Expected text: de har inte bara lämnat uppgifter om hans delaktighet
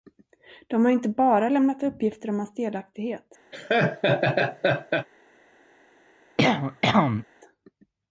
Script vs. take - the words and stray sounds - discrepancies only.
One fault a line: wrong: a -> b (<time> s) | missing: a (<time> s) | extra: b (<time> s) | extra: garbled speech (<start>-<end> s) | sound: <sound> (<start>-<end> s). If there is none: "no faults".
sound: laugh (3.5-5.1 s)
sound: cough (6.4-7.2 s)